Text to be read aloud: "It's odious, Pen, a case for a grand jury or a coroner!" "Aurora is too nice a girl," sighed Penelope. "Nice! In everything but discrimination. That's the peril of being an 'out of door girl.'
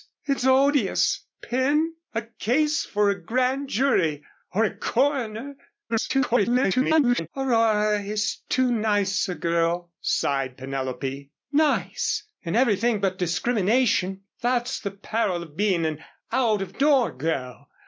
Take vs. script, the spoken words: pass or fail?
fail